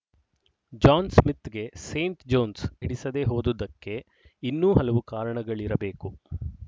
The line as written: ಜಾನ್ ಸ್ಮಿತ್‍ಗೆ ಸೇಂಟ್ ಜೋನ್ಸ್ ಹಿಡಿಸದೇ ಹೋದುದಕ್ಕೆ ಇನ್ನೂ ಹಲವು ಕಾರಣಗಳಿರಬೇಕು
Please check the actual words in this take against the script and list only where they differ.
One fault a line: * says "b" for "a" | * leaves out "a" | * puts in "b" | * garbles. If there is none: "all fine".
all fine